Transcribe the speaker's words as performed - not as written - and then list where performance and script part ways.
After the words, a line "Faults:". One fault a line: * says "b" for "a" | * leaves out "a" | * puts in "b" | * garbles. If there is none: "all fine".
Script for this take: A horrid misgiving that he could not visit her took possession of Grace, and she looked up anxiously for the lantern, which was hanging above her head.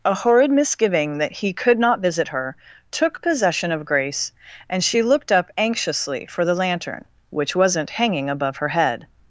A horrid misgiving that he could not visit her took possession of Grace, and she looked up anxiously for the lantern, which wasn't hanging above her head.
Faults:
* says "wasn't" for "was"